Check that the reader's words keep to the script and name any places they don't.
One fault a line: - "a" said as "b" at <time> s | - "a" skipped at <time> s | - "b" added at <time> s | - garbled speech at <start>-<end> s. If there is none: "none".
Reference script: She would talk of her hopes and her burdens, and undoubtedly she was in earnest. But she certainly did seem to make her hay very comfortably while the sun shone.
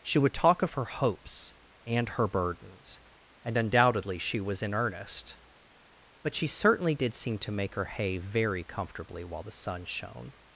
none